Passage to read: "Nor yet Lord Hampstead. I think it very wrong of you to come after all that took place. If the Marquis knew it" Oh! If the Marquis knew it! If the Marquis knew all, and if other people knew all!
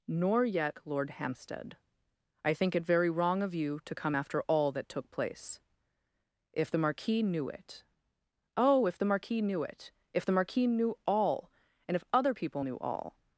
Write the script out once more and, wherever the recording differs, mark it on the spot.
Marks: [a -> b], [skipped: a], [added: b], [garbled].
"Nor yet Lord Hampstead. I think it very wrong of you to come after all that took place. If the Marquis knew it" Oh! If the Marquis knew it! If the Marquis knew all, and if other people knew all!